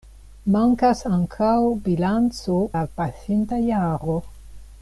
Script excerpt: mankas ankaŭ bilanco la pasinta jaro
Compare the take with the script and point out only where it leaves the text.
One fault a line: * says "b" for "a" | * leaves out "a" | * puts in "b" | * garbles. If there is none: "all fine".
all fine